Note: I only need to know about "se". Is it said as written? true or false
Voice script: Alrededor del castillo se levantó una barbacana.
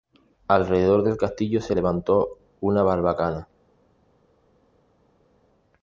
true